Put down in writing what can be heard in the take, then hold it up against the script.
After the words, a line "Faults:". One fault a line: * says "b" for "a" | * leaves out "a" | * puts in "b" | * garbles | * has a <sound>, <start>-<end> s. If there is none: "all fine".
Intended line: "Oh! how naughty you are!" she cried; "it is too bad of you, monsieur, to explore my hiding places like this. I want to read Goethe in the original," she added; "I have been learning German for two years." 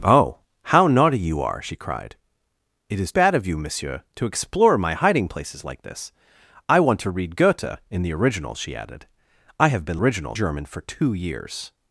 "Oh! how naughty you are!" she cried; "it is bad of you, monsieur, to explore my hiding places like this. I want to read Goethe in the original," she added; "I have been original German for two years."
Faults:
* leaves out "too"
* says "original" for "learning"